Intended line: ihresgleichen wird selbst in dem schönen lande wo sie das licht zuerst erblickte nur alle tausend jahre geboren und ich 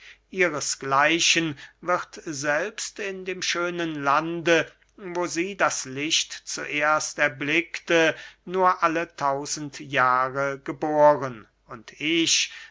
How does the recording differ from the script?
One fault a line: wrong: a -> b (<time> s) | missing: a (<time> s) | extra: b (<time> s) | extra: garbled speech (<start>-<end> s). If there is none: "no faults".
no faults